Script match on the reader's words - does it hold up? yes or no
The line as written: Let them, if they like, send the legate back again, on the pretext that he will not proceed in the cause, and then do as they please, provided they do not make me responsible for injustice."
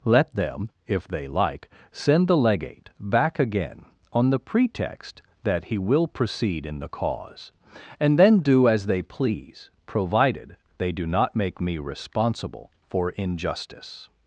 no